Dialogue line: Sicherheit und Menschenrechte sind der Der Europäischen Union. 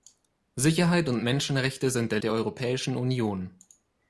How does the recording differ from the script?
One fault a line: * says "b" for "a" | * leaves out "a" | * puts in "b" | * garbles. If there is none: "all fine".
all fine